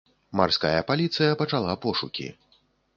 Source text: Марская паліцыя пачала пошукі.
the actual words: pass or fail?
pass